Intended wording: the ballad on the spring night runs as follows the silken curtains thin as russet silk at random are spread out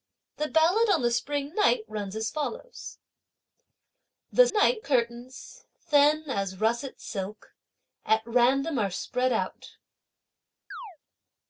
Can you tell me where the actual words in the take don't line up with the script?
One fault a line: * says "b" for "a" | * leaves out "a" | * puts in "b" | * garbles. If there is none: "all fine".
* says "night" for "silken"